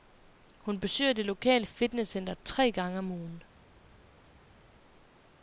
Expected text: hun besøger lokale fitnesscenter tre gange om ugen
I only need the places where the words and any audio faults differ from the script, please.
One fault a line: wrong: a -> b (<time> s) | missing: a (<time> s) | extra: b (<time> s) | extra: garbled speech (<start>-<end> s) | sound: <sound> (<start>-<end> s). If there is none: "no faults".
extra: det (1.1 s)